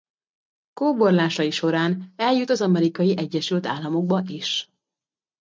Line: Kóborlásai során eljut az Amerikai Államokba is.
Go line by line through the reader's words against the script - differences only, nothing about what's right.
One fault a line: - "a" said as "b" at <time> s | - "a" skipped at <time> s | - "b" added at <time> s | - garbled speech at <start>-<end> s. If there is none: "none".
- "Egyesült" added at 3.2 s